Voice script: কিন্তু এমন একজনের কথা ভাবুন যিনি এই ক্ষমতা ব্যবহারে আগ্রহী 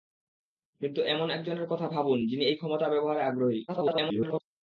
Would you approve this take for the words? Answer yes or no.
no